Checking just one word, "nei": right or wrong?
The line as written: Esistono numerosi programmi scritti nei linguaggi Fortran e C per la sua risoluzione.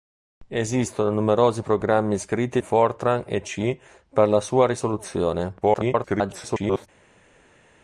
wrong